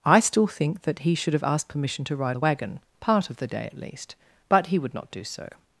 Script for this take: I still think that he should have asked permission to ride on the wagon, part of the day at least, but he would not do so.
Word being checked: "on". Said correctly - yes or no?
no